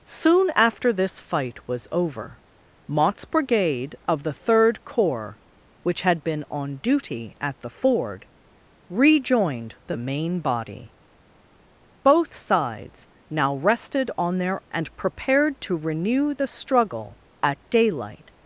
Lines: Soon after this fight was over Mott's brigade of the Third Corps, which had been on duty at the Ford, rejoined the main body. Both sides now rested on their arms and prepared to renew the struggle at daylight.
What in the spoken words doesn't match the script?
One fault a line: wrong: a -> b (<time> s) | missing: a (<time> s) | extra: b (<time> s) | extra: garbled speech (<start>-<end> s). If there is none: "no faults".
missing: arms (14.6 s)